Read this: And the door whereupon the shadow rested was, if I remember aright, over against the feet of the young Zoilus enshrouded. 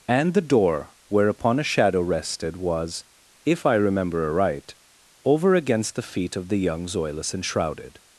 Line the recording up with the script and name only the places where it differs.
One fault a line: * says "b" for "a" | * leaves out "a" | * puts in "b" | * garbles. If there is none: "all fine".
* says "a" for "the"